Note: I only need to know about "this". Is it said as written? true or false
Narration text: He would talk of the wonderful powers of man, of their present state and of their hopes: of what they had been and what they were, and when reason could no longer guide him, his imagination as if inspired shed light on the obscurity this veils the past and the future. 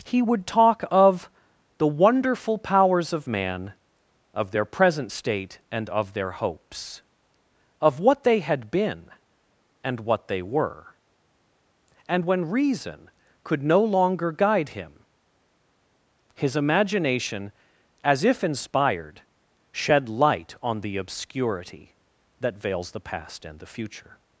false